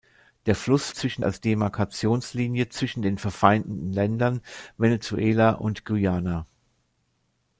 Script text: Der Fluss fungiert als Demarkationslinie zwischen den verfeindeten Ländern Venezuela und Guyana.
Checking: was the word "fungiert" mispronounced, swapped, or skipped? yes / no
yes